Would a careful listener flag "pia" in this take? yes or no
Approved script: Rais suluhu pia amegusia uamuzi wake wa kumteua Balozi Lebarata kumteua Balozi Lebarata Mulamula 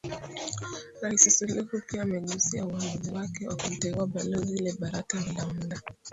no